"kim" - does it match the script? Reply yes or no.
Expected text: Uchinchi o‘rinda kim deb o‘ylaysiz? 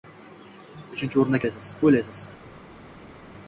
no